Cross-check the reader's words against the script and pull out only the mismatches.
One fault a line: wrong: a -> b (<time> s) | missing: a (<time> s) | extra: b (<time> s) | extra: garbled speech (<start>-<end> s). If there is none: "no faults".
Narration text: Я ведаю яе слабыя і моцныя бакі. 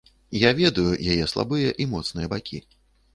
no faults